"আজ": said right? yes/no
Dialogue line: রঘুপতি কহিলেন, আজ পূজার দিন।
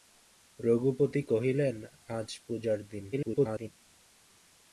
yes